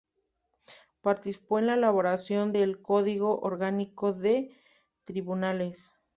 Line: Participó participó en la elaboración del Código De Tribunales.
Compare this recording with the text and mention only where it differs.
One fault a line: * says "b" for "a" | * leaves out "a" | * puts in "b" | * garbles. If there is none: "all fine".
* leaves out "participó"
* puts in "Orgánico"